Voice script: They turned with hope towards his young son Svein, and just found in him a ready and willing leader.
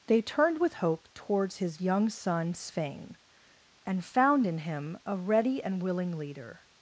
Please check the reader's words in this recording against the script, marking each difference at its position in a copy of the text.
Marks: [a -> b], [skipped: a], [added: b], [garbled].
They turned with hope towards his young son Svein, and [skipped: just] found in him a ready and willing leader.